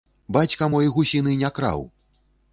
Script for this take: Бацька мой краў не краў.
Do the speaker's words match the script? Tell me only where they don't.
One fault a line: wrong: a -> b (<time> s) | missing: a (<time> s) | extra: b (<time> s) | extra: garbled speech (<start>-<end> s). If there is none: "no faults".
wrong: краў -> гусіны (1.0 s)